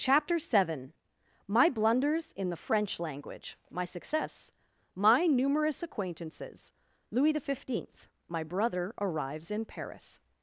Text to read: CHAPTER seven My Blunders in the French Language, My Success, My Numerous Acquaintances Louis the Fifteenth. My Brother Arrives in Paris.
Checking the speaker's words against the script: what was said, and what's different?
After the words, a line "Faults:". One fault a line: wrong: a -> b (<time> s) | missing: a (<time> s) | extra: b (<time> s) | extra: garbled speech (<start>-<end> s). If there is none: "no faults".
CHAPTER seven My Blunders in the French Language, My Success, My Numerous Acquaintances Louis the Fifteenth. My Brother Arrives in Paris.
Faults:
no faults